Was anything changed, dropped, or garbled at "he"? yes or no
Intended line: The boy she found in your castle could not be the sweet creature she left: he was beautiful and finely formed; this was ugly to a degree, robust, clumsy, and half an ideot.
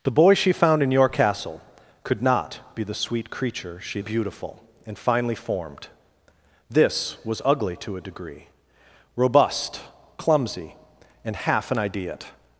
yes